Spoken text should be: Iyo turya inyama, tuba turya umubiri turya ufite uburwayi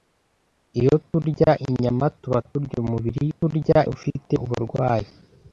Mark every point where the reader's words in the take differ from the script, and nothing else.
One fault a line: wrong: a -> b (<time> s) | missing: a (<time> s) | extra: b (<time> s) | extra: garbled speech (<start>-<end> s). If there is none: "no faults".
no faults